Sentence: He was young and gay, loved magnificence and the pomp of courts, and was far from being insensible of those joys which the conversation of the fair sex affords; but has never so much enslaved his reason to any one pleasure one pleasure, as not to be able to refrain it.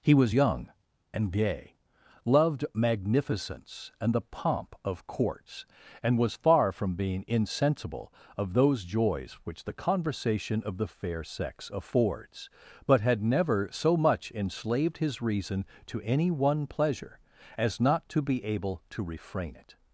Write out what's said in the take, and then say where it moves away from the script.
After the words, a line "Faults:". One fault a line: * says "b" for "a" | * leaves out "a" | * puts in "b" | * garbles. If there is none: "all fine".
He was young and gay, loved magnificence and the pomp of courts, and was far from being insensible of those joys which the conversation of the fair sex affords; but had never so much enslaved his reason to any one pleasure, as not to be able to refrain it.
Faults:
* says "had" for "has"
* leaves out "one pleasure"